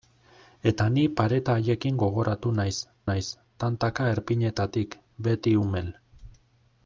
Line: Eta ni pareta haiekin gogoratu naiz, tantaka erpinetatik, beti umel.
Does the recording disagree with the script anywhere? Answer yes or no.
yes